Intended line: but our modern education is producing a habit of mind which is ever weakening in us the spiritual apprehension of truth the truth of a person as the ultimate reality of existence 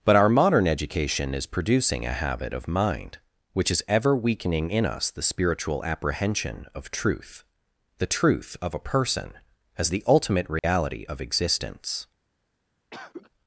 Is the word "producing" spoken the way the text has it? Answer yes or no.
yes